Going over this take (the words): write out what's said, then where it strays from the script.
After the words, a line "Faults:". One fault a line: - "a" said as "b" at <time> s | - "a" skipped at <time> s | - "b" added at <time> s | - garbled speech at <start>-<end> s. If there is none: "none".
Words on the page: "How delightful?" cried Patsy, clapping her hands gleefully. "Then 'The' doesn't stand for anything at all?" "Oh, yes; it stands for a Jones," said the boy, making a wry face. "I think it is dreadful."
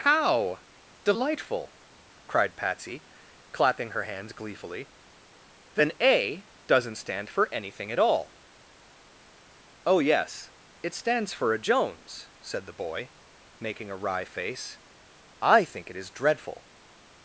"How delightful?" cried Patsy, clapping her hands gleefully. "Then 'A' doesn't stand for anything at all?" "Oh, yes; it stands for a Jones," said the boy, making a wry face. "I think it is dreadful."
Faults:
- "The" said as "A" at 6.0 s